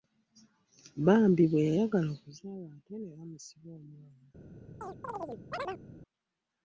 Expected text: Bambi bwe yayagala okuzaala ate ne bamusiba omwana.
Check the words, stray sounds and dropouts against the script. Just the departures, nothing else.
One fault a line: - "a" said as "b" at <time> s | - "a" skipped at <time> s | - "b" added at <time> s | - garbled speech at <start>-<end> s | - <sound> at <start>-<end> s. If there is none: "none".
- chirp at 4.8-5.8 s